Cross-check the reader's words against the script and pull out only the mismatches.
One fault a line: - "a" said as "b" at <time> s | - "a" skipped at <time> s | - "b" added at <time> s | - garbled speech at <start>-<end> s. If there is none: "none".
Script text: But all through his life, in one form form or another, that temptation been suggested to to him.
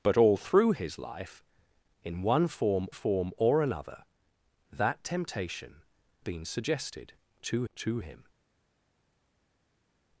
none